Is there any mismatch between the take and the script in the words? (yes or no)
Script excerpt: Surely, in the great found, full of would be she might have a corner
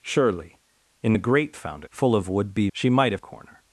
no